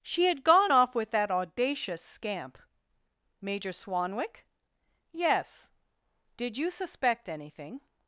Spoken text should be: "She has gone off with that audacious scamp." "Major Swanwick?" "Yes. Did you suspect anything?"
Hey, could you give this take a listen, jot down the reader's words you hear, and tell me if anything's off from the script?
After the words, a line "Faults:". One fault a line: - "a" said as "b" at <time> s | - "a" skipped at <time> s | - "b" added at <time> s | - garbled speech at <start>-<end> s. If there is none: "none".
"She had gone off with that audacious scamp." "Major Swanwick?" "Yes. Did you suspect anything?"
Faults:
- "has" said as "had" at 0.2 s